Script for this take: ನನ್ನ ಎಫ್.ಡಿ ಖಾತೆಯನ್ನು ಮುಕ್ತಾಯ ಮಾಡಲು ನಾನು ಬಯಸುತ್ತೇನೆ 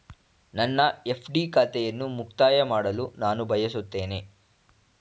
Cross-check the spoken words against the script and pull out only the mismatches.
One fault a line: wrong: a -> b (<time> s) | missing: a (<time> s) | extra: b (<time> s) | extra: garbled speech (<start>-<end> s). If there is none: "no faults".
no faults